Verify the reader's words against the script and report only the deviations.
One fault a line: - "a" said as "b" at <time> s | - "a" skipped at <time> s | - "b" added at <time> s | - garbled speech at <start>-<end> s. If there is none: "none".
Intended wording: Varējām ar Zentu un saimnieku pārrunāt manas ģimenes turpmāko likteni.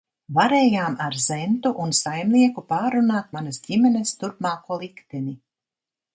none